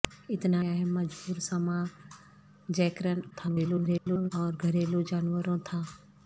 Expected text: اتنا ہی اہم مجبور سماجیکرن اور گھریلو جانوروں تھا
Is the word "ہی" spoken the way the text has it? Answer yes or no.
no